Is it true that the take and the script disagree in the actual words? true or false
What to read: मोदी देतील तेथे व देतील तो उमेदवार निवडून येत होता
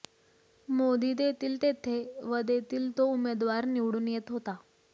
false